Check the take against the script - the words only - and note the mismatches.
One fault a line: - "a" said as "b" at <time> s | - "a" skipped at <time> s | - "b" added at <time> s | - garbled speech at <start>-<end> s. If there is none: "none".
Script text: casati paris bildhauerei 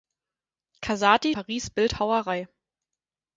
none